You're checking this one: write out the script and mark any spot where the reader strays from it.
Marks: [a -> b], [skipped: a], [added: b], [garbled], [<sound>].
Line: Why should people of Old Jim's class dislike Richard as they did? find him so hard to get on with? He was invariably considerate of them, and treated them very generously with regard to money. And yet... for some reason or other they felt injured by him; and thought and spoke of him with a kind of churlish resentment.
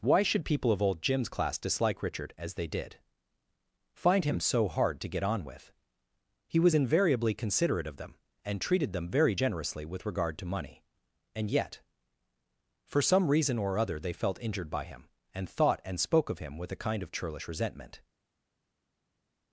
Why should people of Old Jim's class dislike Richard as they did? find him so hard to get on with? He was invariably considerate of them, and treated them very generously with regard to money. And yet... for some reason or other they felt injured by him; and thought and spoke of him with a kind of churlish resentment.